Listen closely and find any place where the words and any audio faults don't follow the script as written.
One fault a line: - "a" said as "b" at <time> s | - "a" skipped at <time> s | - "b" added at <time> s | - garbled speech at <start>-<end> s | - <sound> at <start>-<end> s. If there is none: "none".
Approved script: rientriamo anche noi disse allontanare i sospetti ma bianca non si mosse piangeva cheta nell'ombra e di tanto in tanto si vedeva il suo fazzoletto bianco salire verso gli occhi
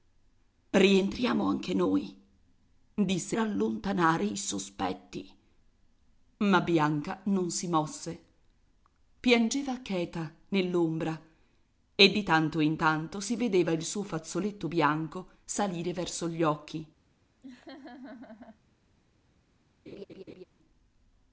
- laugh at 17.4-18.6 s
- laugh at 19.9-20.4 s